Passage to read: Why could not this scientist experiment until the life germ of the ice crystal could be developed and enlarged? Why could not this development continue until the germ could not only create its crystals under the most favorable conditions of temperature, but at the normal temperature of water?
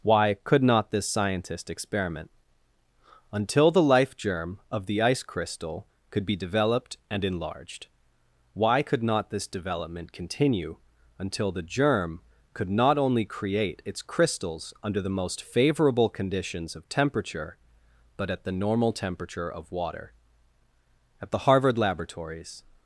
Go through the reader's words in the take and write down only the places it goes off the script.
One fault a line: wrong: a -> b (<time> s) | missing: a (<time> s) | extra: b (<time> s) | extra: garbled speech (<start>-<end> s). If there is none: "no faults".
extra: At the Harvard laboratories (21.2 s)